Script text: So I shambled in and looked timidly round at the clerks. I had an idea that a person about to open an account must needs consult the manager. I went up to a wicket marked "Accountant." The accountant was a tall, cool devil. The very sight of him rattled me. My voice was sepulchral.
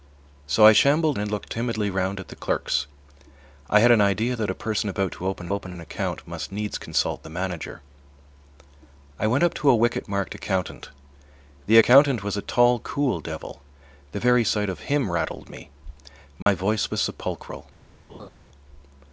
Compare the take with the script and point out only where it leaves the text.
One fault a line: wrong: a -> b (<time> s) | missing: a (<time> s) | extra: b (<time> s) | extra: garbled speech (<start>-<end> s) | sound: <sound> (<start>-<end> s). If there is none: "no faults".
missing: in (1.2 s)
extra: open (5.5 s)
sound: dropout (16.4-16.5 s)
sound: laugh (18.1-18.3 s)